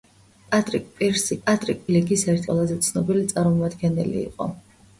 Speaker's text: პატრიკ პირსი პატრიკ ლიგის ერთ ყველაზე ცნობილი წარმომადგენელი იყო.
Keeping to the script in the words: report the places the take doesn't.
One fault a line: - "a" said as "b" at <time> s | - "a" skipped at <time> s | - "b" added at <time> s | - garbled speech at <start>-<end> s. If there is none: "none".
none